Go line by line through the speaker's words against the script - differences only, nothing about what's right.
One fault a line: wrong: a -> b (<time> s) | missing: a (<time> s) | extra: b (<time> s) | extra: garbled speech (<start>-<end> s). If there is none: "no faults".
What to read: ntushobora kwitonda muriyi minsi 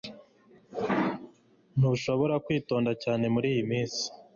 extra: cyane (3.0 s)